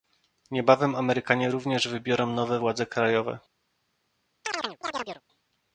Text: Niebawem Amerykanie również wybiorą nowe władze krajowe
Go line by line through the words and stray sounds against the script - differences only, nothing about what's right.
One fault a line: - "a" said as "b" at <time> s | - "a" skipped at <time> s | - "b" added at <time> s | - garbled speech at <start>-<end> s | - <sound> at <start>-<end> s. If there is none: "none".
- chirp at 4.4-5.2 s